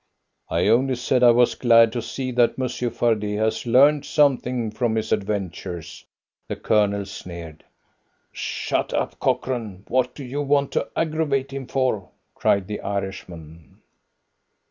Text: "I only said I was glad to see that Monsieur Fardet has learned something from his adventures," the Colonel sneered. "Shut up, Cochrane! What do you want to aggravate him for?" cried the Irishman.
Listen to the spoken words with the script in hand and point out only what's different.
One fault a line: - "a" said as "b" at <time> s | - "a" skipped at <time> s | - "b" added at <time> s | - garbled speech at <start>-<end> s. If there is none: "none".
none